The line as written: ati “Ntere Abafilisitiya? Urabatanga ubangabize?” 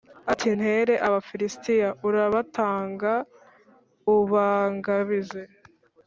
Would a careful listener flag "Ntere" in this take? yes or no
no